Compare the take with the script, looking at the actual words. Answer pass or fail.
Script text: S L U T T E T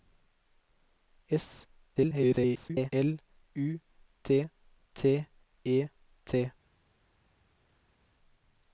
fail